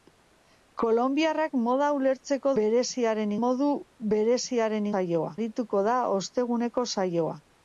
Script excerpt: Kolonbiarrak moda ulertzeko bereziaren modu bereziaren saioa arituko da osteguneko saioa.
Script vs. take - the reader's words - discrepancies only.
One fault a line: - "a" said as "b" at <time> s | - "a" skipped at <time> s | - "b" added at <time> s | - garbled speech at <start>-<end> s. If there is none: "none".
none